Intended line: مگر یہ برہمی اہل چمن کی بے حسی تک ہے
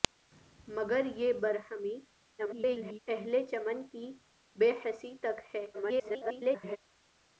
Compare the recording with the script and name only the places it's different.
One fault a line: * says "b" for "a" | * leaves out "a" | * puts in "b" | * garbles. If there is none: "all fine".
* garbles
* garbles